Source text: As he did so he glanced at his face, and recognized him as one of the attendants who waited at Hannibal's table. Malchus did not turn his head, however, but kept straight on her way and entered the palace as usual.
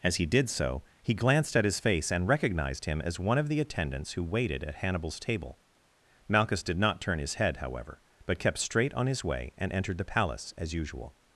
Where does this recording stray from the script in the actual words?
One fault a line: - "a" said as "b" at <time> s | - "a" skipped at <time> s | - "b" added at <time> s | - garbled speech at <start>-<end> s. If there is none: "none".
- "her" said as "his" at 9.1 s